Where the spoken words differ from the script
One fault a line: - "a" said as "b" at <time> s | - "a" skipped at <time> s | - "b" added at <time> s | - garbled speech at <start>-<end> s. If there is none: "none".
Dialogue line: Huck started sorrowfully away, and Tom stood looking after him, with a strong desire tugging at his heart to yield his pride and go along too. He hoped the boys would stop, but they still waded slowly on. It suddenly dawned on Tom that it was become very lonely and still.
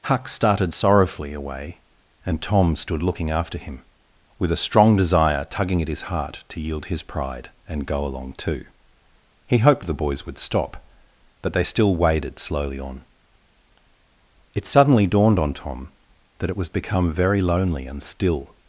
none